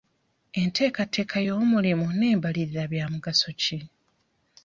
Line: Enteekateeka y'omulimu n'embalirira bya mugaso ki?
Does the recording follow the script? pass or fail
pass